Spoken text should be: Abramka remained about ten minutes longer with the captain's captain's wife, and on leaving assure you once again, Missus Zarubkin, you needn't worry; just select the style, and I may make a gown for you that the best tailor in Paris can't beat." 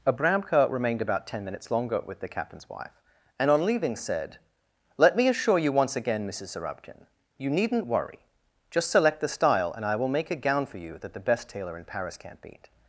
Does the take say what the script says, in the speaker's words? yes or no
no